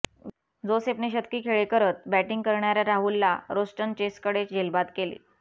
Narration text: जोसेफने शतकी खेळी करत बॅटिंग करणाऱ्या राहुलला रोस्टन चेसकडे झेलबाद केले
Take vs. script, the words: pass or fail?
pass